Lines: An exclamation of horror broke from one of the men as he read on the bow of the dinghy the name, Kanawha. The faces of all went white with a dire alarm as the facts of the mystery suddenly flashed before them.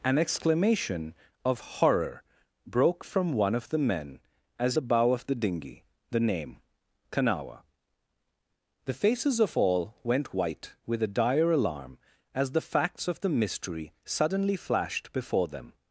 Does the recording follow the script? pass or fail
fail